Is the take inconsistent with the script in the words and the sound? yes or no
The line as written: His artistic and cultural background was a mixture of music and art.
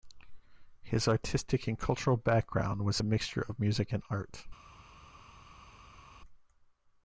no